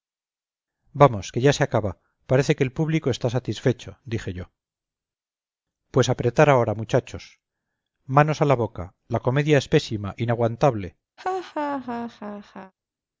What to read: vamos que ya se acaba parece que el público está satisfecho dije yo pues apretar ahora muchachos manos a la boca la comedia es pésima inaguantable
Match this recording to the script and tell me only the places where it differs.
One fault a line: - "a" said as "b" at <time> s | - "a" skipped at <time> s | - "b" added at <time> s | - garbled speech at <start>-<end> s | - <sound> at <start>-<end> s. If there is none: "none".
- laugh at 11.2-12.7 s